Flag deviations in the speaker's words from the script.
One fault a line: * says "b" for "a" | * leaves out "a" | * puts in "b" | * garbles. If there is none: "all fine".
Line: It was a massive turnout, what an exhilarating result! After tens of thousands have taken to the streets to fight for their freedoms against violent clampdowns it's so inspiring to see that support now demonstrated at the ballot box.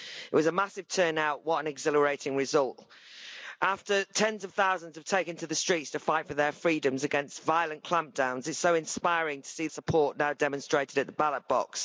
* leaves out "that"